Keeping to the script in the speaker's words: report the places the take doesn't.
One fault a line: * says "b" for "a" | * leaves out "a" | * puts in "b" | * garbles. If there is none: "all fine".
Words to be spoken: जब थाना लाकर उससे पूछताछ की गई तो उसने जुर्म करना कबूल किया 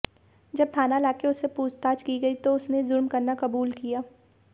all fine